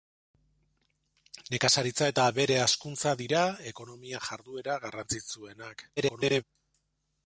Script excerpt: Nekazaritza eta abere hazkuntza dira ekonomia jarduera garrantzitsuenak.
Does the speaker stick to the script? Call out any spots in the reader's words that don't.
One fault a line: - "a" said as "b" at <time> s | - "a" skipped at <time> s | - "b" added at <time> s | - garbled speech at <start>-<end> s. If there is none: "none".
- garbled speech at 6.0-6.4 s